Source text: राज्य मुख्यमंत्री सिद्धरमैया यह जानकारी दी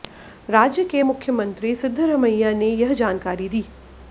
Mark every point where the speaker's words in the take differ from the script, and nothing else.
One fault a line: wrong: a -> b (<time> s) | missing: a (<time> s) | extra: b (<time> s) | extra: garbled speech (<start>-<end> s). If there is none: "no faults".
extra: के (0.8 s)
extra: ने (2.5 s)